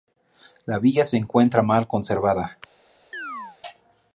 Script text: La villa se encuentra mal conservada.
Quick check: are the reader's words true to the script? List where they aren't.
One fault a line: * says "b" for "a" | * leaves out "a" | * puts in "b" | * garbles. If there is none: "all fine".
all fine